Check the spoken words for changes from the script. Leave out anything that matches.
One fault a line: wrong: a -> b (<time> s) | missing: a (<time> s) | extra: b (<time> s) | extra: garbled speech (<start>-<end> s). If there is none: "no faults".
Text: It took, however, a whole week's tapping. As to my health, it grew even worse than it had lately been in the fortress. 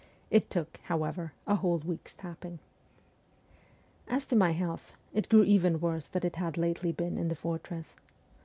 no faults